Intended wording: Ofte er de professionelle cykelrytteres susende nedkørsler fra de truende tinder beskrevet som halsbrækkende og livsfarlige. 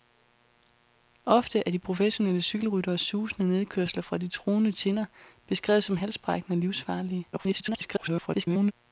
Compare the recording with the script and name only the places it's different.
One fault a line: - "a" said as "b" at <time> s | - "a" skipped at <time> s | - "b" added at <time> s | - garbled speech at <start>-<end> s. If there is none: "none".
- garbled speech at 7.3-8.7 s